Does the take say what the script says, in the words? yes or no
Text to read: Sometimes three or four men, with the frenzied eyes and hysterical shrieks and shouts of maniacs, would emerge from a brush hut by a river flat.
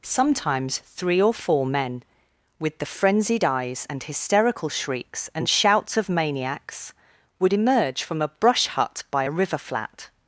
yes